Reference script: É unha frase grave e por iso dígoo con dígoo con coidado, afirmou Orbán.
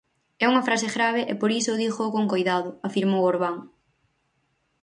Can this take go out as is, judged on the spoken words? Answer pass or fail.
fail